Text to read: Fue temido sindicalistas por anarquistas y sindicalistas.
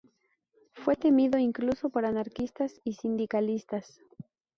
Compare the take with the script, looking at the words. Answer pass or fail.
fail